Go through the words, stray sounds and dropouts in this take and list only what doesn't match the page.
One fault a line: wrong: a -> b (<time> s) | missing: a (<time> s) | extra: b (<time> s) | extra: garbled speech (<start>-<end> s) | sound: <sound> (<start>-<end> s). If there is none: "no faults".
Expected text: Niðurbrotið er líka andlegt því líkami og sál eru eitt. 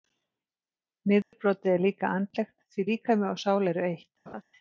sound: dropout (1.2-1.3 s)
sound: laugh (4.3-4.4 s)